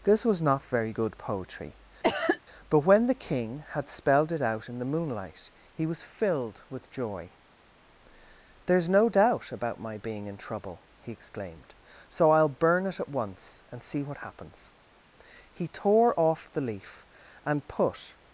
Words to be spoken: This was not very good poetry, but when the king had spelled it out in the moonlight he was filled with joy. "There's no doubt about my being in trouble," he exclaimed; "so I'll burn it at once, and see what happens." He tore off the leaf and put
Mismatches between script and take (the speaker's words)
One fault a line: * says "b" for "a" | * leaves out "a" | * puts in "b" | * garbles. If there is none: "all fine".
all fine